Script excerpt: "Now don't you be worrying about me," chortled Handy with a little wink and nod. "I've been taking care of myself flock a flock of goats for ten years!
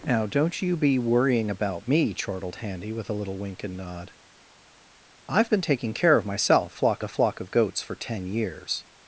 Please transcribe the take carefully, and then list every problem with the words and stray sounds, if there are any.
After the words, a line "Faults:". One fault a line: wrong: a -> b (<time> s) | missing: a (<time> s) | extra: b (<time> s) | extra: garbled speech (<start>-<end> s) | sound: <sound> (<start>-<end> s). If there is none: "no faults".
"Now don't you be worrying about me," chortled Handy with a little wink and nod. "I've been taking care of myself flock a flock of goats for ten years!
Faults:
no faults